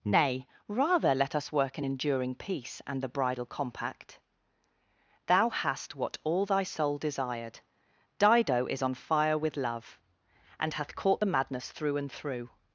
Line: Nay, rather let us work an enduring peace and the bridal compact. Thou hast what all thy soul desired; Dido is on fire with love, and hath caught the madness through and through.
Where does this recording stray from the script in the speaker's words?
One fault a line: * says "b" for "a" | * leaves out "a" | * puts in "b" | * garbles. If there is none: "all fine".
all fine